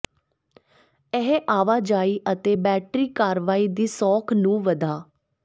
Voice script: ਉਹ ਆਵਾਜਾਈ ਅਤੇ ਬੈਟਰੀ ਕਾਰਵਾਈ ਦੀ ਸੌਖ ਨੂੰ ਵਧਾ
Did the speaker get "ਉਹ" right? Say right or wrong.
wrong